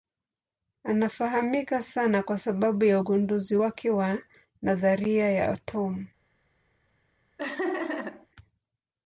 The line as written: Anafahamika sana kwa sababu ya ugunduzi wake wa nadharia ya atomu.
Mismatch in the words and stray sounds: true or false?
true